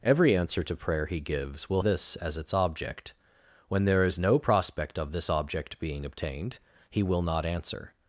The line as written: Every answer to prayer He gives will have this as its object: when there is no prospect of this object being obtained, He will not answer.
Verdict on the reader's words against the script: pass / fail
fail